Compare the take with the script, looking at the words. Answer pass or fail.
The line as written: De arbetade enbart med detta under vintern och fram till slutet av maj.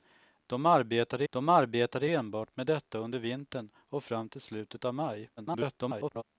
fail